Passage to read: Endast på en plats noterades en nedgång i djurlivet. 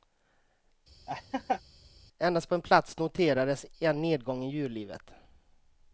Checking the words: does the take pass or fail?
pass